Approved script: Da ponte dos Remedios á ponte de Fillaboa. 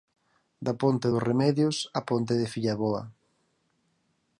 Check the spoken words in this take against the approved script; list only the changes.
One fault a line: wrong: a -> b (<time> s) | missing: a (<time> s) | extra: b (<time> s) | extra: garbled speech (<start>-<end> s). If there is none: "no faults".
no faults